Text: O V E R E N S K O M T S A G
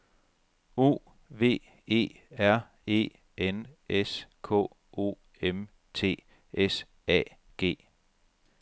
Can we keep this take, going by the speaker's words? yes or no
yes